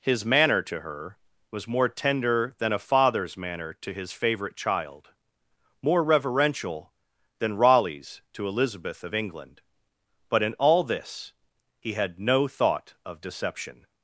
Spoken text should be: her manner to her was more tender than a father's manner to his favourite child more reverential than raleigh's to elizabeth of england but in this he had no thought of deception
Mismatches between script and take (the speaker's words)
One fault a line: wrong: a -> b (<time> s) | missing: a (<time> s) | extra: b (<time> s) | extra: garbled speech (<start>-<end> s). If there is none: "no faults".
wrong: her -> his (0.0 s)
extra: all (10.5 s)